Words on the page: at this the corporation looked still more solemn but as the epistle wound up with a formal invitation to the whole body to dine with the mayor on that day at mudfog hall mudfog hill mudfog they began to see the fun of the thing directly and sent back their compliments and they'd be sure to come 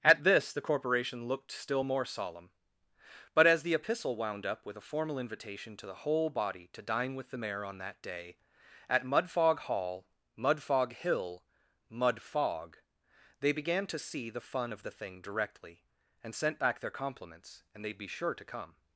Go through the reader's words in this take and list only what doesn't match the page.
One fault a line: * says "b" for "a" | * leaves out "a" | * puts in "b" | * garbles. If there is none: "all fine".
all fine